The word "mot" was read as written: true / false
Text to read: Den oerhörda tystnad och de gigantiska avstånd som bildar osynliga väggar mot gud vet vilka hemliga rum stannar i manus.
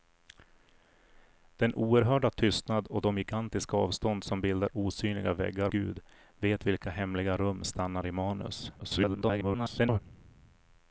false